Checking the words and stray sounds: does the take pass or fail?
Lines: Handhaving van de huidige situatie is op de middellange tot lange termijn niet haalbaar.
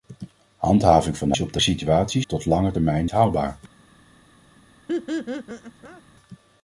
fail